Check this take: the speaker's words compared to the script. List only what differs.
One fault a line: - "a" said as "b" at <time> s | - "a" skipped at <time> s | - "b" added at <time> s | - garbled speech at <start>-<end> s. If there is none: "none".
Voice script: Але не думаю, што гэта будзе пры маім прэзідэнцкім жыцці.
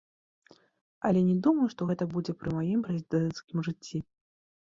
none